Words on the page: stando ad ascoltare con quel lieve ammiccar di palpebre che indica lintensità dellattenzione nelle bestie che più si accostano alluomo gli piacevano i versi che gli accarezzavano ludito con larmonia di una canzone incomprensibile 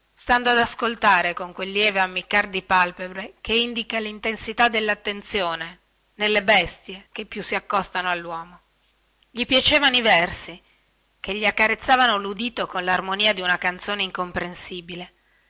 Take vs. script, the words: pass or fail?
pass